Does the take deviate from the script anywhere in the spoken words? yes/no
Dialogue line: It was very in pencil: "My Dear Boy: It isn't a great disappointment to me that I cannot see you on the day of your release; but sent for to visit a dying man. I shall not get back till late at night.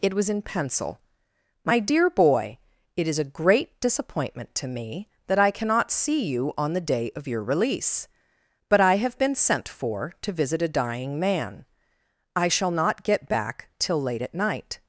yes